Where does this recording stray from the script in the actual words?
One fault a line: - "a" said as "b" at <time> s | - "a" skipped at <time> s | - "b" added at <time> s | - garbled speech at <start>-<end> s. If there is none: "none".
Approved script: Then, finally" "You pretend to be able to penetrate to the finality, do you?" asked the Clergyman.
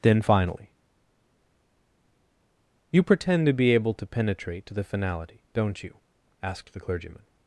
- "do" said as "don't" at 5.5 s